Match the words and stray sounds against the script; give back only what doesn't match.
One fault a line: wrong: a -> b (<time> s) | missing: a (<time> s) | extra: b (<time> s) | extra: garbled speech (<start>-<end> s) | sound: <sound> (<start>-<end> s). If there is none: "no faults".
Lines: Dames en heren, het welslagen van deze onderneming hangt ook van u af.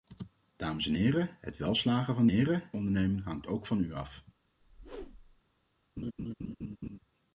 wrong: deze -> heren (2.3 s)
sound: whoosh (4.6-5.4 s)
sound: laugh (6.0-7.0 s)